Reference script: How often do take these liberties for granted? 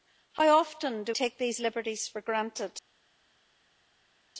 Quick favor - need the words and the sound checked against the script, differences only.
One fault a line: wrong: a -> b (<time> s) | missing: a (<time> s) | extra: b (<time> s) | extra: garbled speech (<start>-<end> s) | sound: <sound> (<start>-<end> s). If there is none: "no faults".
no faults